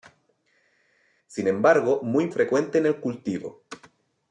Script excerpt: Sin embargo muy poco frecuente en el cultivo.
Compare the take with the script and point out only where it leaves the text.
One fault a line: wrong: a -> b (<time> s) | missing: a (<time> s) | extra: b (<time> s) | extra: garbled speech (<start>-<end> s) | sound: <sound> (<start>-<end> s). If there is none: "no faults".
missing: poco (2.3 s)